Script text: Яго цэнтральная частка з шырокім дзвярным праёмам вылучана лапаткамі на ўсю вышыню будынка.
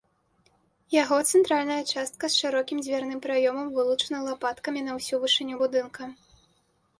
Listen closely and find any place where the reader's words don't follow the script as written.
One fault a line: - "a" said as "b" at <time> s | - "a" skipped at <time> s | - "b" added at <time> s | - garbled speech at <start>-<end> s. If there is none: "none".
none